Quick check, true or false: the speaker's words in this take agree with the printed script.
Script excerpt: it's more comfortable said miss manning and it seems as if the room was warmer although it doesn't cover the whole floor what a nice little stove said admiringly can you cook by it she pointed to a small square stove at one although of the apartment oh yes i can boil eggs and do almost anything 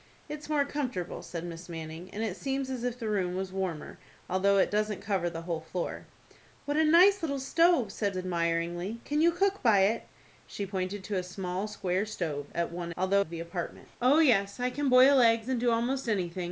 true